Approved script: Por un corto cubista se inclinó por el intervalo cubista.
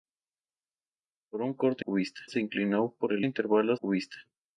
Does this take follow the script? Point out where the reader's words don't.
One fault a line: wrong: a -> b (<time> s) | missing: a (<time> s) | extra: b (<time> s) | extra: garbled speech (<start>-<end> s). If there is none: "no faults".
no faults